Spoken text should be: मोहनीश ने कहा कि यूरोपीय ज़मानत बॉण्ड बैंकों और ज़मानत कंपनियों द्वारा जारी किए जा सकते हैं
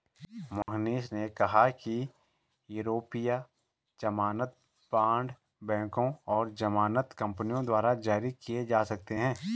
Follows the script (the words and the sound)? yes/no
no